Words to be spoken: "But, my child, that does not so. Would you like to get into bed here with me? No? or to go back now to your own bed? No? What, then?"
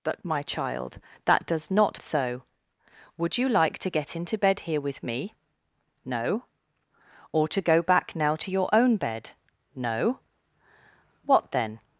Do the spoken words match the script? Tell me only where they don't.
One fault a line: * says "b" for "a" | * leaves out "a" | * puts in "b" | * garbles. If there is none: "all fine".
all fine